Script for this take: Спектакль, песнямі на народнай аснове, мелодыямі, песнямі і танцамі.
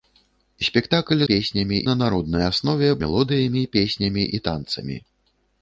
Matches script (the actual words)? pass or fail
pass